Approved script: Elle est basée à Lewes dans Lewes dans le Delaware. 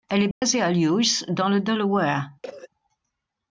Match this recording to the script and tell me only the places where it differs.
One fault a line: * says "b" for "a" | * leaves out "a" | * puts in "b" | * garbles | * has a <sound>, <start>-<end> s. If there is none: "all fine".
* has a dropout, 0.3-0.4 s
* leaves out "Lewes dans"
* has a cough, 2.4-2.7 s